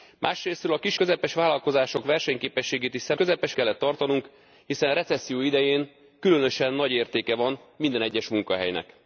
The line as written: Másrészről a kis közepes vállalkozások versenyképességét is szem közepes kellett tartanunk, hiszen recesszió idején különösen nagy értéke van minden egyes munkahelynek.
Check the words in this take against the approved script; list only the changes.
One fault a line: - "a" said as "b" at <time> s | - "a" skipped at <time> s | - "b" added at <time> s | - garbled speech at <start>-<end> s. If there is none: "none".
none